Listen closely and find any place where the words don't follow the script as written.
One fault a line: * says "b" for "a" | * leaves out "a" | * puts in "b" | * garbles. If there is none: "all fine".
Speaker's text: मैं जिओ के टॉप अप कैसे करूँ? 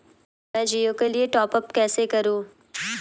* puts in "लिए"